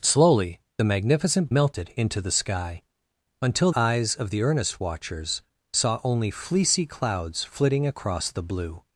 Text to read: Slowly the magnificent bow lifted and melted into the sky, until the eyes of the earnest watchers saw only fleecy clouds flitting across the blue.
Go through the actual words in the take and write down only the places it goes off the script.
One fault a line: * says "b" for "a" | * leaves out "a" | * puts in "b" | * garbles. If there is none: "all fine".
* leaves out "bow lifted and"
* leaves out "the"